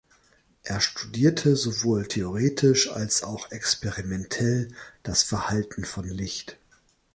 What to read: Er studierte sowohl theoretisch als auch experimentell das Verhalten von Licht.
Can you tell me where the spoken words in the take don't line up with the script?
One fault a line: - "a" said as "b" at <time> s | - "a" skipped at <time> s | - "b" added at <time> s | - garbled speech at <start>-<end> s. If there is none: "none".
none